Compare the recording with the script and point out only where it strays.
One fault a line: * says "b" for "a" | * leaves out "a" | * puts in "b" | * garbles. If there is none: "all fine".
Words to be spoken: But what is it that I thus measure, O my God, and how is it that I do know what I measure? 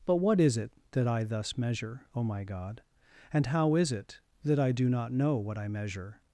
* puts in "not"